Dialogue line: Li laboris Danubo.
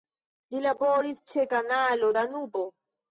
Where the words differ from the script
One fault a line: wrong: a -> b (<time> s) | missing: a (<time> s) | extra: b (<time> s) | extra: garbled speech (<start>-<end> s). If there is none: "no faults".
extra: ĉe Kanalo (1.3 s)